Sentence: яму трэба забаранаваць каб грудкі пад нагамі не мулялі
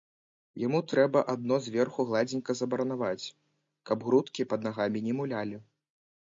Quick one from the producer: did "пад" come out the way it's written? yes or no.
yes